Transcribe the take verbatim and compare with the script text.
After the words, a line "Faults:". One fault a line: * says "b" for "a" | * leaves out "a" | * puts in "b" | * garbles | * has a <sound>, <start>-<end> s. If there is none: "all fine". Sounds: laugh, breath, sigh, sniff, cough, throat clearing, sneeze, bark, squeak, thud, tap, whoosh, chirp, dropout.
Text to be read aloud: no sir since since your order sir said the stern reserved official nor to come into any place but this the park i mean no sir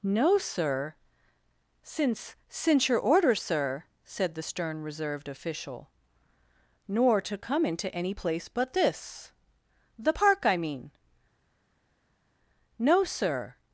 no sir since since your order sir said the stern reserved official nor to come into any place but this the park i mean no sir
Faults:
all fine